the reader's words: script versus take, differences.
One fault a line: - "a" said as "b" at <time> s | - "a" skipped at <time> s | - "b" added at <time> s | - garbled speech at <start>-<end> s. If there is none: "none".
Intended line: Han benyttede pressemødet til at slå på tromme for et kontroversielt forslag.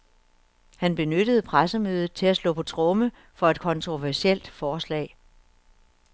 none